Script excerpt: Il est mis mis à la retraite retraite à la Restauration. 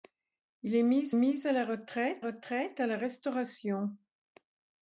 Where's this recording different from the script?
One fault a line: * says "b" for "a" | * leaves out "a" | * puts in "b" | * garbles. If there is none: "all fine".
all fine